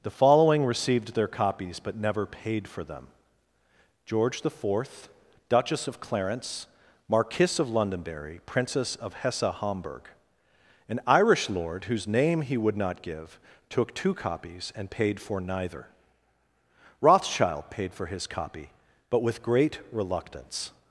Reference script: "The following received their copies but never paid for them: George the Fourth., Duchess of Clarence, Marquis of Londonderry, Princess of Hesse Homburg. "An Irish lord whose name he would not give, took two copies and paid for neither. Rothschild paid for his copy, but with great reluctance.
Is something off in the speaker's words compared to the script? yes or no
no